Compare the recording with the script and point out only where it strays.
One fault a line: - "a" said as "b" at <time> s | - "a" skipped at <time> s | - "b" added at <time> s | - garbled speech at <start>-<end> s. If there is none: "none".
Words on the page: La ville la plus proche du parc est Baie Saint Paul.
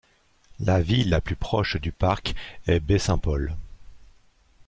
none